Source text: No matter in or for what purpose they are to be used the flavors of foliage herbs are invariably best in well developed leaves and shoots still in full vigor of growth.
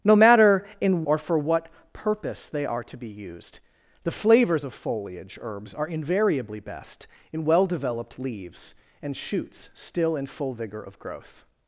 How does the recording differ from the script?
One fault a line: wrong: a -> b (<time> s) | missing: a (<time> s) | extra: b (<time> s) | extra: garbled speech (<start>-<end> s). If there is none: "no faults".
no faults